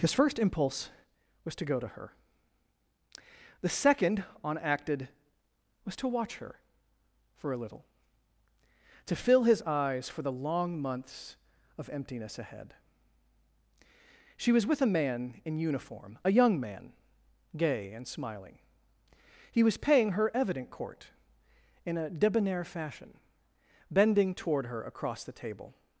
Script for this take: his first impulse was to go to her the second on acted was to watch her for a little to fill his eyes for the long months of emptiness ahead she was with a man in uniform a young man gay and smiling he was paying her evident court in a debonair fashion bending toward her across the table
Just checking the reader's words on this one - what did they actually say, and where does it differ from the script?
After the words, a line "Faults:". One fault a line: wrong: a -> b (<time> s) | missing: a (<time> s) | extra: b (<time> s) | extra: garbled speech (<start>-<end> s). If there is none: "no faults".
his first impulse was to go to her the second on acted was to watch her for a little to fill his eyes for the long months of emptiness ahead she was with a man in uniform a young man gay and smiling he was paying her evident court in a debonair fashion bending toward her across the table
Faults:
no faults